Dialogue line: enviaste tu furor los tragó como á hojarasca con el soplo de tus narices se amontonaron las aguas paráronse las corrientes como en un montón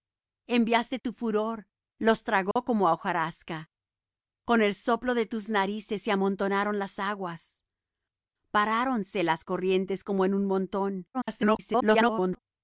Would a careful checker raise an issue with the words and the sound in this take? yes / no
yes